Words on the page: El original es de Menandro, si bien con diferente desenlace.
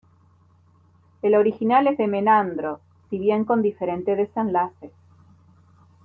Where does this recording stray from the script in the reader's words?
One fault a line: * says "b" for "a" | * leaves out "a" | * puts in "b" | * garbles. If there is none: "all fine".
all fine